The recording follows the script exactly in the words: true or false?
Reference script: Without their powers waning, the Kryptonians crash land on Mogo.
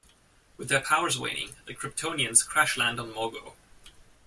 false